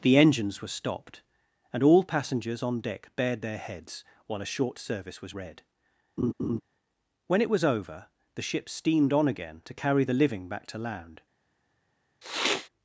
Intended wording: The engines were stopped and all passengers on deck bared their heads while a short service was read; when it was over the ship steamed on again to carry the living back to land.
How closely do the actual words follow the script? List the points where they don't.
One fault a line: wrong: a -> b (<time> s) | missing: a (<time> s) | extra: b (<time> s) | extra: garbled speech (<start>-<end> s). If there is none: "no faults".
no faults